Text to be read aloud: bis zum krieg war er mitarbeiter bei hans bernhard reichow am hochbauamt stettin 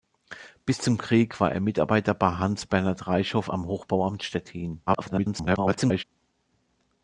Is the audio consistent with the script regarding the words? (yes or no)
no